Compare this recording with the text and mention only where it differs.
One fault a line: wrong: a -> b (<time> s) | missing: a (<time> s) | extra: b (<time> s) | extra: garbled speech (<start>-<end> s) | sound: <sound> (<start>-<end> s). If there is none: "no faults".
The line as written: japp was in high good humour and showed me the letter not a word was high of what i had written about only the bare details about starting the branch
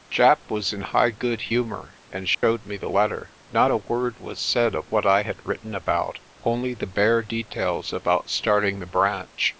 sound: dropout (2.3-2.4 s)
wrong: high -> said (4.4 s)